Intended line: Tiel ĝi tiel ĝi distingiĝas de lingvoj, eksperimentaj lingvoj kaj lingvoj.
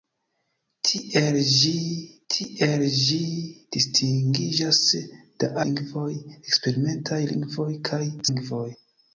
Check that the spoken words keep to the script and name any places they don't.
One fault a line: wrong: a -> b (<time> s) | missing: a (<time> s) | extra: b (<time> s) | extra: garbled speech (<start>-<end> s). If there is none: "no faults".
no faults